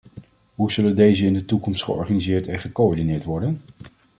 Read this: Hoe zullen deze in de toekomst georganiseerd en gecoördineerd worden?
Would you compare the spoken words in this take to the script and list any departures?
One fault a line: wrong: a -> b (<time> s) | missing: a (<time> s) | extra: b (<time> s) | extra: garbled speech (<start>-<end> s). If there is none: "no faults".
no faults